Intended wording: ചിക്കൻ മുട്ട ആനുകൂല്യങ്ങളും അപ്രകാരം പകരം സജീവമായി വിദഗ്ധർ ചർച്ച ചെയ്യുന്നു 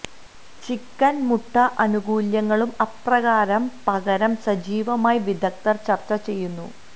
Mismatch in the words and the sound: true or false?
false